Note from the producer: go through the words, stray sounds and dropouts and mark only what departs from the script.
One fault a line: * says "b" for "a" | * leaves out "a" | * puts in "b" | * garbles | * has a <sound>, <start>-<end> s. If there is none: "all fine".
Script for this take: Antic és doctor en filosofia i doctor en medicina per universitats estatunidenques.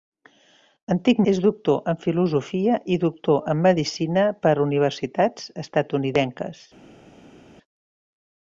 all fine